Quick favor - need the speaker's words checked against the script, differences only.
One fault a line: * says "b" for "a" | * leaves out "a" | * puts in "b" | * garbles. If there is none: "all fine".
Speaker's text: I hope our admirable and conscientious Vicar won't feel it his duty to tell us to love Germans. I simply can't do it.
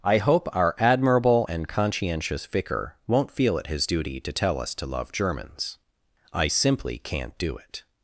all fine